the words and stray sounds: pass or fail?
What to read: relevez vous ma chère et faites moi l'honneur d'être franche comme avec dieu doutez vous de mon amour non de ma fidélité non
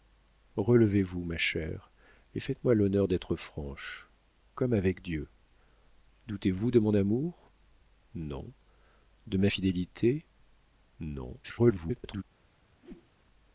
fail